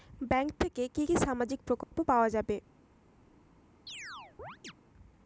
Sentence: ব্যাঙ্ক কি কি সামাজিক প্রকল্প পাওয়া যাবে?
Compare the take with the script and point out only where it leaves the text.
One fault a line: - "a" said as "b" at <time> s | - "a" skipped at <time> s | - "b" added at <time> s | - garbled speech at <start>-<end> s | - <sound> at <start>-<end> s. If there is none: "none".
- "থেকে" added at 0.6 s
- dropout at 1.8-1.9 s
- chirp at 3.9-4.7 s